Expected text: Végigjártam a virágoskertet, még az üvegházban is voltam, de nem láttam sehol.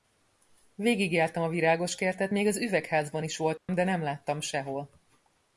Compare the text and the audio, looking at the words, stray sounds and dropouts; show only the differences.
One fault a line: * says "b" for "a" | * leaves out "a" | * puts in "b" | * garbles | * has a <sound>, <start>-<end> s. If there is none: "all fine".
* has a dropout, 3.6-3.7 s